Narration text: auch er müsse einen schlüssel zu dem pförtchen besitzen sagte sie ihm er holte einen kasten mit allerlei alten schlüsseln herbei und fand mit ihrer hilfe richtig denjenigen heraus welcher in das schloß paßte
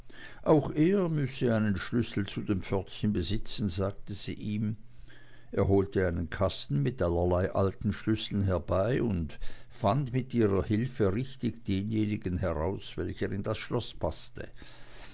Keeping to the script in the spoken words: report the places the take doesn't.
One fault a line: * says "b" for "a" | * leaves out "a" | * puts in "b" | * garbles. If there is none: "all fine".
all fine